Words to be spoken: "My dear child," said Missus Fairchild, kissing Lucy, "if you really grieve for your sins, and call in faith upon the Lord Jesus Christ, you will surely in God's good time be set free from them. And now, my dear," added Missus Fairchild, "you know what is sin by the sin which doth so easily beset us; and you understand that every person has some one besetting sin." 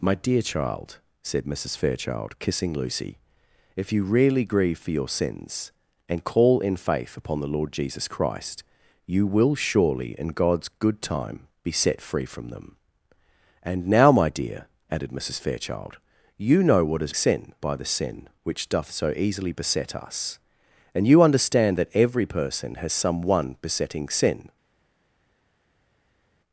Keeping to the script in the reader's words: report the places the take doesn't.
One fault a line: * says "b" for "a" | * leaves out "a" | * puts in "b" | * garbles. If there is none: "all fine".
all fine